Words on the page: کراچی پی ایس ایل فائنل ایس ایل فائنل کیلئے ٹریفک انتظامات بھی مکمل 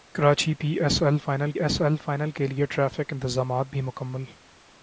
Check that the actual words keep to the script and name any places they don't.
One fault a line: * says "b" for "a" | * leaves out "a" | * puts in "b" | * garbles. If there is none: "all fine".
all fine